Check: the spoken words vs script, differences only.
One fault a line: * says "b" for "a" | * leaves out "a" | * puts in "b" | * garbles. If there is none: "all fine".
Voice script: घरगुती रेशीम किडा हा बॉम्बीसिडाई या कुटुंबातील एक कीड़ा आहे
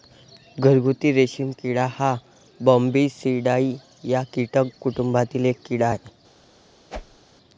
* puts in "कीटक"